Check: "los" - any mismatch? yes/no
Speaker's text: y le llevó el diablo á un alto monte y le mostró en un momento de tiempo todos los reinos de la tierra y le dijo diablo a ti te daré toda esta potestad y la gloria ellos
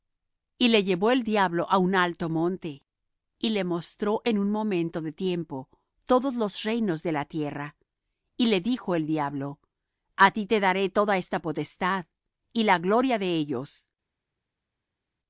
no